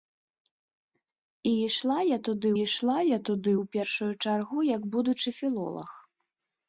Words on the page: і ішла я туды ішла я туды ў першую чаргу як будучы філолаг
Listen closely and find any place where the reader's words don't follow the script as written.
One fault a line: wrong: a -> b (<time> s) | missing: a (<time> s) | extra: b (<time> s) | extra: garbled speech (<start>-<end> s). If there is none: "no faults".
no faults